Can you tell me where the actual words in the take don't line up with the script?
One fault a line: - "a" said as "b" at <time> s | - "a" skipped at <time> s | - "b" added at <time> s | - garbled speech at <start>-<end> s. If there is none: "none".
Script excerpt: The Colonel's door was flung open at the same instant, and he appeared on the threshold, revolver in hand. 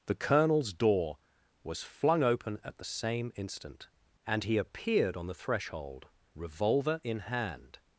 none